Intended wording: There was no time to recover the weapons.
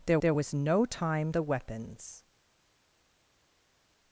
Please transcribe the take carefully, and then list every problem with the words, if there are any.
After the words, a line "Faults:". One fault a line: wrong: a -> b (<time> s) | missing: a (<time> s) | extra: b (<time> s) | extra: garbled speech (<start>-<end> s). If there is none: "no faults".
There there was no time the weapons.
Faults:
extra: there (0.2 s)
missing: to recover (1.3 s)